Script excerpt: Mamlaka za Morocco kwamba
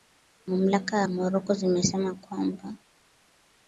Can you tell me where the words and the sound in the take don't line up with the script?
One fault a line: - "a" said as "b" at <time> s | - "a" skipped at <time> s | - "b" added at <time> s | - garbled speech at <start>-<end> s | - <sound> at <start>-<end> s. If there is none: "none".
- "zimesema" added at 1.5 s